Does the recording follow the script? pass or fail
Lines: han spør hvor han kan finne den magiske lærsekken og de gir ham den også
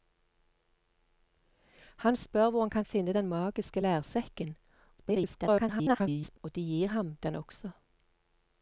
fail